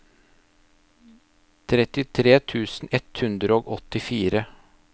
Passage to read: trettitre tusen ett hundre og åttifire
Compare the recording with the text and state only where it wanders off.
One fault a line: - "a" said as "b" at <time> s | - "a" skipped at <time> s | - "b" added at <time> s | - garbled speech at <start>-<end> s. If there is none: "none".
none